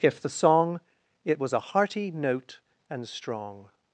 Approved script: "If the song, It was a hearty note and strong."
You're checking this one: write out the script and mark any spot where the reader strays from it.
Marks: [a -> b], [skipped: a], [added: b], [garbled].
"If the song, It was a hearty note and strong."